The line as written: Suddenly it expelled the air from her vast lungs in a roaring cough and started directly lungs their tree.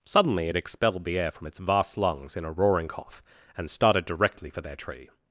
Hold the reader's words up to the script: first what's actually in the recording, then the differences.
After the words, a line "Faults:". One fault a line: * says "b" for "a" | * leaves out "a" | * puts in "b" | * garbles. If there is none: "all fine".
Suddenly it expelled the air from its vast lungs in a roaring cough and started directly for their tree.
Faults:
* says "its" for "her"
* says "for" for "lungs"